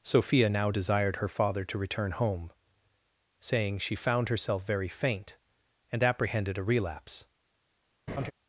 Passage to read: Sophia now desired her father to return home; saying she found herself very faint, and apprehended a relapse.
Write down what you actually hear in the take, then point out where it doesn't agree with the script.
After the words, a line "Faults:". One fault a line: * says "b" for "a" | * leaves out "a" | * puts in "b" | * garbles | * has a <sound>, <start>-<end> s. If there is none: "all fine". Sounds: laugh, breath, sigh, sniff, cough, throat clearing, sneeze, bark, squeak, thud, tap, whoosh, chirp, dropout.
Sophia now desired her father to return home; saying she found herself very faint, and apprehended a relapse.
Faults:
* has a laugh, 8.1-8.3 s